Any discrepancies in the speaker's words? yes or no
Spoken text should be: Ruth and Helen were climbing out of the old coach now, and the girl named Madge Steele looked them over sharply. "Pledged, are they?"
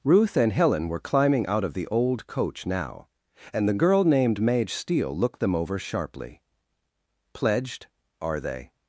no